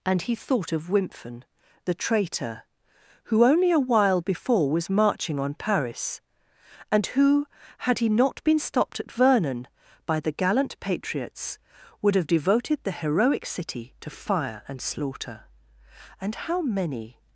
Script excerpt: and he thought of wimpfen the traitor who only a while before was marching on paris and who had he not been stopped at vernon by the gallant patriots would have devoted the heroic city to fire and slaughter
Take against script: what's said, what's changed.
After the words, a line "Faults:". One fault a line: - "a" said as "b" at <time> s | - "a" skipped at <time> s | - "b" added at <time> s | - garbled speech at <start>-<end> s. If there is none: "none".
and he thought of wimpfen the traitor who only a while before was marching on paris and who had he not been stopped at vernon by the gallant patriots would have devoted the heroic city to fire and slaughter and how many
Faults:
- "and how many" added at 16.2 s